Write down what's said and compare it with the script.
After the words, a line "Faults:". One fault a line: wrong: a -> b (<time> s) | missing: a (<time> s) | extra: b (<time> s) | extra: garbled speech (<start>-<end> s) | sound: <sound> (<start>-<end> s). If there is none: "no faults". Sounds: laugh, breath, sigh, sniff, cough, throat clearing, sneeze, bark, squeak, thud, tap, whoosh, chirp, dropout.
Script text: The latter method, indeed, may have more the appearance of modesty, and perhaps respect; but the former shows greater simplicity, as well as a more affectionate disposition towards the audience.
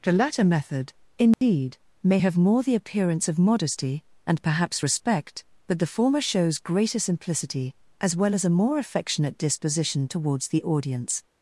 The latter method, indeed, may have more the appearance of modesty, and perhaps respect; but the former shows greater simplicity, as well as a more affectionate disposition towards the audience.
Faults:
sound: dropout (1.3-1.4 s)